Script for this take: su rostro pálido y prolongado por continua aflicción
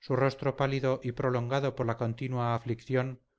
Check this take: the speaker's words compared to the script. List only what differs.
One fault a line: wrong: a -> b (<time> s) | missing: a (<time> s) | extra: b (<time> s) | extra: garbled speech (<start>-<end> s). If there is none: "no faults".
extra: la (1.8 s)